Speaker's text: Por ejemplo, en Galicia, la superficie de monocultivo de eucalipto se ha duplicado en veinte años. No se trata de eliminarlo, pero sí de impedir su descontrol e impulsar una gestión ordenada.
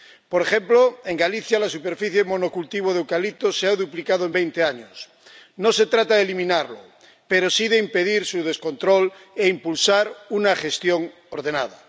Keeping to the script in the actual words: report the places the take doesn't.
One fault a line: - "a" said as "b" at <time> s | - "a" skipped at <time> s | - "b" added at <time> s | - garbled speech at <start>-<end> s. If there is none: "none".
none